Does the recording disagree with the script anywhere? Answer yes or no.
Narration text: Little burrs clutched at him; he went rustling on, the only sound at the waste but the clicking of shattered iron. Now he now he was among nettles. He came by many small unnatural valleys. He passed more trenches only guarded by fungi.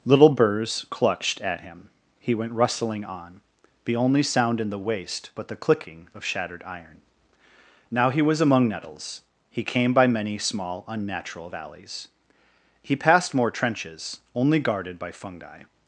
yes